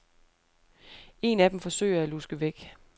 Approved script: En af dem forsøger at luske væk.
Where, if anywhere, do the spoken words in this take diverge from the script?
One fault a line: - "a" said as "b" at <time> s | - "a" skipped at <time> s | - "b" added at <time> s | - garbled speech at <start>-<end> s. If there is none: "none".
none